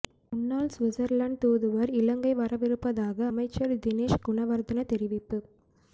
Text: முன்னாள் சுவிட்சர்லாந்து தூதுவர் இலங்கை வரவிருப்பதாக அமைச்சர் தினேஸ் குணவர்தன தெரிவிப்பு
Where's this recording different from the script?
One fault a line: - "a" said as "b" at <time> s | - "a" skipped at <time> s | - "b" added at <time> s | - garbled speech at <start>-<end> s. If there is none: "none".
none